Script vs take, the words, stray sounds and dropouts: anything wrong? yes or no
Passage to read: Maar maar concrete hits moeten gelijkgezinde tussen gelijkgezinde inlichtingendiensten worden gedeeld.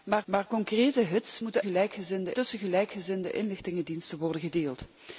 no